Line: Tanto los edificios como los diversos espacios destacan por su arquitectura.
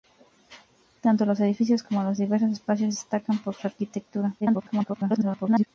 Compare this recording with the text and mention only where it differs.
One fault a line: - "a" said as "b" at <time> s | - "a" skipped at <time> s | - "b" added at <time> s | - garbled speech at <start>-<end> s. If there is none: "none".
- garbled speech at 4.4-5.7 s